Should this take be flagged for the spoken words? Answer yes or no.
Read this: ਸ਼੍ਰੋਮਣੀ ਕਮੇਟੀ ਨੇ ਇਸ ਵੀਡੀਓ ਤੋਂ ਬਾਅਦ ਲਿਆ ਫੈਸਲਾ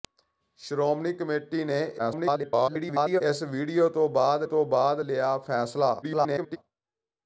yes